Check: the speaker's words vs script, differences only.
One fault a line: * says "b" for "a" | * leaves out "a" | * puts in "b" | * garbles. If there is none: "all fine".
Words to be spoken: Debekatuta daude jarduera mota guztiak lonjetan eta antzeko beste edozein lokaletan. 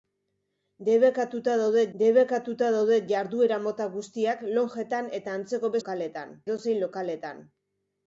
* puts in "debekatuta daude"
* says "lokaletan" for "beste"